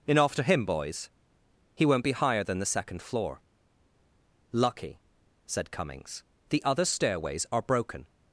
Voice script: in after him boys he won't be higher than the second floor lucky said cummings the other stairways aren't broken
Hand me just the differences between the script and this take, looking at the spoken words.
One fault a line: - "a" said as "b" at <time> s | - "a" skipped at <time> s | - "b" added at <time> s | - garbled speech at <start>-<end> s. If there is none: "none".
- "aren't" said as "are" at 7.5 s